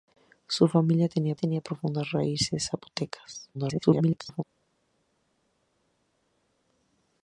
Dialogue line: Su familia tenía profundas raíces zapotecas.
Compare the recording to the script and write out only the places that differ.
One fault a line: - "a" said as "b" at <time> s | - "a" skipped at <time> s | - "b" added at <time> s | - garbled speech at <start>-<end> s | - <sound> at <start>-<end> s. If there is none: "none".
- "tenía" added at 1.3 s
- garbled speech at 3.5-4.4 s